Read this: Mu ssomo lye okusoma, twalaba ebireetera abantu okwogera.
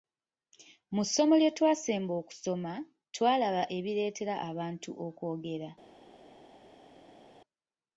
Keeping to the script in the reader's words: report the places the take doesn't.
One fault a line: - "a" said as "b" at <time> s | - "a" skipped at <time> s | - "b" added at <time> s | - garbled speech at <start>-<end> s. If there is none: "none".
- "twasemba" added at 1.6 s